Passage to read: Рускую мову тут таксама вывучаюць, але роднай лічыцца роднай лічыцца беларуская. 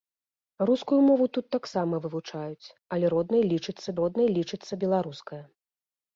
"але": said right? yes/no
yes